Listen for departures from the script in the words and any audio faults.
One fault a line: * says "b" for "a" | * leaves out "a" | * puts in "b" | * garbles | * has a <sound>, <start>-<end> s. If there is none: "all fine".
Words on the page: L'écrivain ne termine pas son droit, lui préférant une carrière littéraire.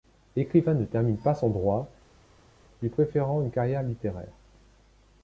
all fine